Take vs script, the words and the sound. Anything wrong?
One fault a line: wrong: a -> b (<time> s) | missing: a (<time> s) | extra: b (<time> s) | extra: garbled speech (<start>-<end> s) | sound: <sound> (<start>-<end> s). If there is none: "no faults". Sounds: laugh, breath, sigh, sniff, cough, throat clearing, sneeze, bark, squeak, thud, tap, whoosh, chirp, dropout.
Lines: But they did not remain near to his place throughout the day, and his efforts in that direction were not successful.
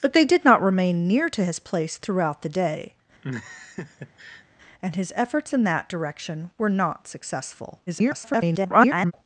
sound: laugh (3.2-4.4 s)
extra: garbled speech (7.9-9.1 s)